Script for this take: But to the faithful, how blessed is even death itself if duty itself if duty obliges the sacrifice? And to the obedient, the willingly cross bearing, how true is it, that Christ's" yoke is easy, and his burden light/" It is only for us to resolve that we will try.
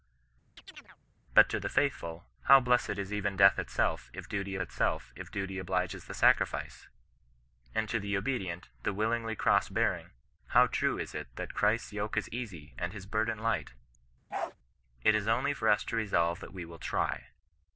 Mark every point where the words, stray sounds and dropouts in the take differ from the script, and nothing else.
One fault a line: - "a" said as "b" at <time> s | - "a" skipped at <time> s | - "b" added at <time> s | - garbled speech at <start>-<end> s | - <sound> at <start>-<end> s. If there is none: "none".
- chirp at 0.6-1.0 s
- bark at 14.3-14.5 s